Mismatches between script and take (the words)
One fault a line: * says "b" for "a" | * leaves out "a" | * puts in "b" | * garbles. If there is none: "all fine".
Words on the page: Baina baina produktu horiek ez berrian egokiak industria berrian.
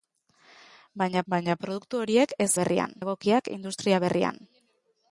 all fine